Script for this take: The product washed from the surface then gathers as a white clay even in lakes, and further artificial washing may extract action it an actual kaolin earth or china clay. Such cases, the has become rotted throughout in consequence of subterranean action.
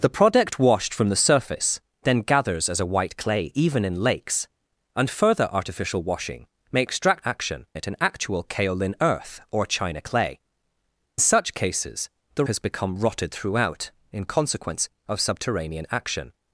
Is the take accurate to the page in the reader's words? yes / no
yes